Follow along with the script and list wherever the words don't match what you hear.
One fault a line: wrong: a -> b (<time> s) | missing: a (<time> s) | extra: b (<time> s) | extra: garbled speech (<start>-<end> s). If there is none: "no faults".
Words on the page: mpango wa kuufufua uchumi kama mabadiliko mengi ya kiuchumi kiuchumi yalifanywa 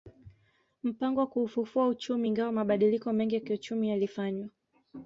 wrong: kama -> ingawa (2.3 s)
missing: kiuchumi (3.9 s)